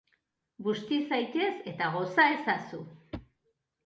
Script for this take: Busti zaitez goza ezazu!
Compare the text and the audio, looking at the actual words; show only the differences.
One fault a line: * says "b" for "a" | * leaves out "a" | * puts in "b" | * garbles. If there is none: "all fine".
* puts in "eta"